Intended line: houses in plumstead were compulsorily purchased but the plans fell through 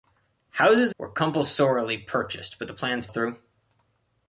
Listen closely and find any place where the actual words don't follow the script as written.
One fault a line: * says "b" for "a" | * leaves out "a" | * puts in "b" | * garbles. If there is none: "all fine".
* leaves out "in plumstead"
* leaves out "fell"